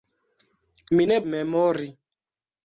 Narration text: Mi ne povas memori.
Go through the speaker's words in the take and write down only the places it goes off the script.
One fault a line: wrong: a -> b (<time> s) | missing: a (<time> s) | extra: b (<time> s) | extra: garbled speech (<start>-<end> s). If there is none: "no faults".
missing: povas (1.2 s)